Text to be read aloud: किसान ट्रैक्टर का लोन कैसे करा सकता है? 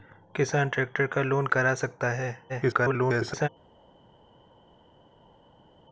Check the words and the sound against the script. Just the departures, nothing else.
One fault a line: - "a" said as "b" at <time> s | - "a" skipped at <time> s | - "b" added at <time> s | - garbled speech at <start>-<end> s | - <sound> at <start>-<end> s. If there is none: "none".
- "कैसे" skipped at 1.5 s
- garbled speech at 2.5-3.5 s